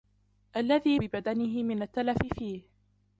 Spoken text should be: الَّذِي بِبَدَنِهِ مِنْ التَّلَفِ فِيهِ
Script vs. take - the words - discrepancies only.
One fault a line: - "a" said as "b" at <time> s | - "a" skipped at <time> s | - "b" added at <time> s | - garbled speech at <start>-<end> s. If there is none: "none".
none